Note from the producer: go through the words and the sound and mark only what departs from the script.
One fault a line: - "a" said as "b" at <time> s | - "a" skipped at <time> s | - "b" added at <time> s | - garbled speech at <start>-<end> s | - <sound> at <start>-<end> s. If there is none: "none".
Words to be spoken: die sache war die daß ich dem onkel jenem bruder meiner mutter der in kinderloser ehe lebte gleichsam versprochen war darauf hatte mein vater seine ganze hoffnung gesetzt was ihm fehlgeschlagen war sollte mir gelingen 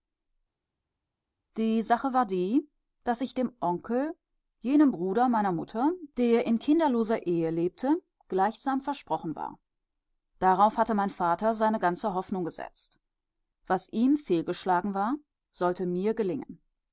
none